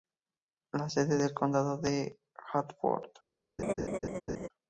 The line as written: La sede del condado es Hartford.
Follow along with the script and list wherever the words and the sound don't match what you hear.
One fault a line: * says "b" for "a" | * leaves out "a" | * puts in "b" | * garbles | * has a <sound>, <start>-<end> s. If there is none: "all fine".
* has a laugh, 3.6-4.5 s